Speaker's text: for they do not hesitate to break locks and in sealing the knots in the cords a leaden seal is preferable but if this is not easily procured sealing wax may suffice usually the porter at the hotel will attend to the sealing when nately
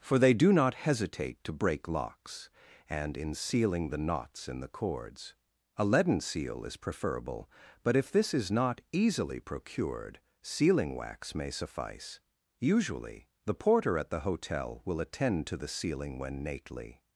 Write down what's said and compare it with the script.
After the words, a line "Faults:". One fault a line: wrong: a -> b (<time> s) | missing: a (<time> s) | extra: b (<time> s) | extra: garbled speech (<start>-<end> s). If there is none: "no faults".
for they do not hesitate to break locks and in sealing the knots in the cords a leaden seal is preferable but if this is not easily procured sealing wax may suffice usually the porter at the hotel will attend to the sealing when nately
Faults:
no faults